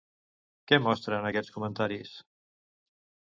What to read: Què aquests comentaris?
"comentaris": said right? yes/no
yes